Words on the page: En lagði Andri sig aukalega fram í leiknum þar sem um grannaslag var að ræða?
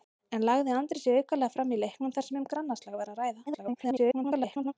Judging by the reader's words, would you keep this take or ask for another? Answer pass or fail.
fail